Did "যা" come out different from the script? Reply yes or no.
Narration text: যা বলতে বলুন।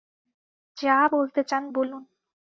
no